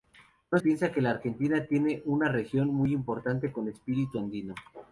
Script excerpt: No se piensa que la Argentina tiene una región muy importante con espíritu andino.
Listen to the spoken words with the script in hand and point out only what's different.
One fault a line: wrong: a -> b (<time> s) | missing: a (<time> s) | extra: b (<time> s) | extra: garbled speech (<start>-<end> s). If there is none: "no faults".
missing: se (0.6 s)